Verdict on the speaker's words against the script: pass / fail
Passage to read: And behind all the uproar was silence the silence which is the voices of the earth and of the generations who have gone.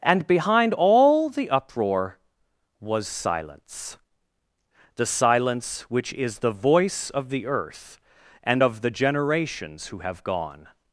fail